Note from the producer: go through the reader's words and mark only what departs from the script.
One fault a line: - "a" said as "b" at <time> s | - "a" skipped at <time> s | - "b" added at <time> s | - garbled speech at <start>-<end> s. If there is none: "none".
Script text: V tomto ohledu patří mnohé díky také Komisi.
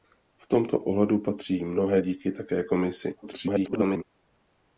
- garbled speech at 3.2-4.0 s